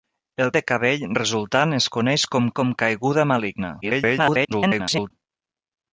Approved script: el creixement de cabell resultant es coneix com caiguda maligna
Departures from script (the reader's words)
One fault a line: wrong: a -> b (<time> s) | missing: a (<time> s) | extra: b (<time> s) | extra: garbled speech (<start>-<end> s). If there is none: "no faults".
missing: creixement (0.5 s)
extra: com (2.6 s)
extra: garbled speech (3.8-5.1 s)